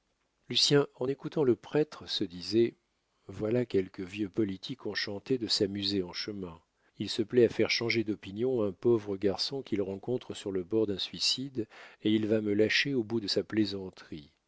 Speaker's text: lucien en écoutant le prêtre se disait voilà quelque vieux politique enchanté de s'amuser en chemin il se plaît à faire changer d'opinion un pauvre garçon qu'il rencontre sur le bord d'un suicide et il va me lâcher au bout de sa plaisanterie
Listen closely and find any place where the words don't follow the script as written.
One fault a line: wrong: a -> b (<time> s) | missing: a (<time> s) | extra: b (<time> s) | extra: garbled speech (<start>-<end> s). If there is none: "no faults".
no faults